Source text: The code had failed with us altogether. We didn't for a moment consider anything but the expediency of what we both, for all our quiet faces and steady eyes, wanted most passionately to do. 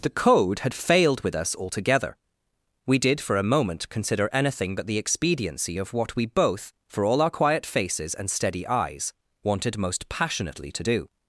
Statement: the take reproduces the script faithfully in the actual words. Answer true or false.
false